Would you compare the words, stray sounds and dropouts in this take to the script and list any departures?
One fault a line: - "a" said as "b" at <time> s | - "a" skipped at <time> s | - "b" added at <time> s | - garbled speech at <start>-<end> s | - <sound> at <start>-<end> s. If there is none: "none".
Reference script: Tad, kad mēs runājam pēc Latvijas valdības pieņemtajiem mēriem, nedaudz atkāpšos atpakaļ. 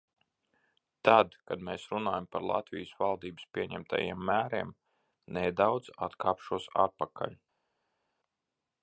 - "pēc" said as "par" at 2.4 s